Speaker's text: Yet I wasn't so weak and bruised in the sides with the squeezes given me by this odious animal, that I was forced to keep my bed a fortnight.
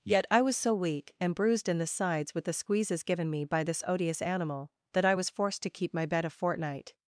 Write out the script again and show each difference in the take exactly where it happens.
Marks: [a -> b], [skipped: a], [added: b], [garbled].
Yet I [wasn't -> was] so weak and bruised in the sides with the squeezes given me by this odious animal, that I was forced to keep my bed a fortnight.